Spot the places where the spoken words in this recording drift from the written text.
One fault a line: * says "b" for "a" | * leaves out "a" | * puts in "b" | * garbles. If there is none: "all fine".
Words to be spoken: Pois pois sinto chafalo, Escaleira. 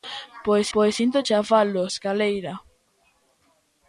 all fine